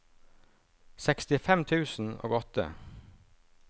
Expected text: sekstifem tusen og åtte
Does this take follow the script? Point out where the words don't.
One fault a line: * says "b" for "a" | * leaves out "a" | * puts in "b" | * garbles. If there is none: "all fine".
all fine